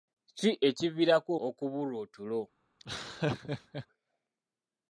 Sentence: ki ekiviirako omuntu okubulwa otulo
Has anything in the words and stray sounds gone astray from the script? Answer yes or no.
yes